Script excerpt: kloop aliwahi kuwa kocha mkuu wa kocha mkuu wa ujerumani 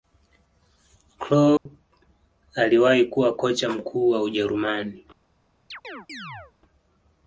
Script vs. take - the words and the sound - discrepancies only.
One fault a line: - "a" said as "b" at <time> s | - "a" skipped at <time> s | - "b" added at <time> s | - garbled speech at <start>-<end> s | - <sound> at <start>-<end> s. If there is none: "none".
- dropout at 1.6-1.7 s
- "kocha mkuu wa" skipped at 4.2 s
- chirp at 5.7-6.5 s